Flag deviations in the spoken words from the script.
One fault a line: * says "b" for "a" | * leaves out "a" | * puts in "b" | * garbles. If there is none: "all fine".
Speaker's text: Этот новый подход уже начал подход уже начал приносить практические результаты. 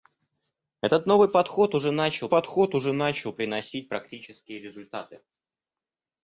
all fine